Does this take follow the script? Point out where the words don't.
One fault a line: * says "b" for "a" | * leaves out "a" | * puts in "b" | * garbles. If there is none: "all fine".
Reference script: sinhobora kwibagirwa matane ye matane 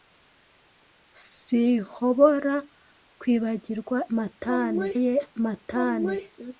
all fine